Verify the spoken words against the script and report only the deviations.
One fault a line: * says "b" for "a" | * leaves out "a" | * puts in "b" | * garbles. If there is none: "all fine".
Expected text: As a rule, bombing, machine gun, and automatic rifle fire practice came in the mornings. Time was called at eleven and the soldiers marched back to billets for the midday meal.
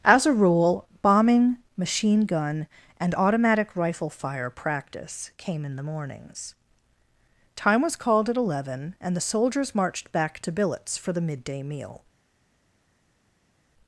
all fine